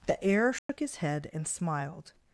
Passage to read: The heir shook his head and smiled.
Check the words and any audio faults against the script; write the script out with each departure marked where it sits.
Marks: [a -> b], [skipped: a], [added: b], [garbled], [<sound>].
The heir shook [dropout] his head and smiled.